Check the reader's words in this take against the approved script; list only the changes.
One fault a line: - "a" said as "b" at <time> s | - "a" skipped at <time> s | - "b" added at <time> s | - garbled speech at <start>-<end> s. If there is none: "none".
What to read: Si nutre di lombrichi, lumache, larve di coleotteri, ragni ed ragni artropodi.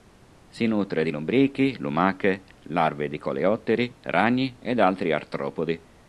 - "ragni" said as "altri" at 4.8 s